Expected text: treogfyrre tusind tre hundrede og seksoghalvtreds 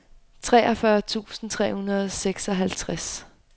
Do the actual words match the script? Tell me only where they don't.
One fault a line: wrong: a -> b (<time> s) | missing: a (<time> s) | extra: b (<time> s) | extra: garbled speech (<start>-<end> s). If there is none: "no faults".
no faults